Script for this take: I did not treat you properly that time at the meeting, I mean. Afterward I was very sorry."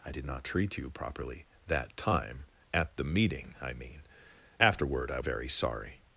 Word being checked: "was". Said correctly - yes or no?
no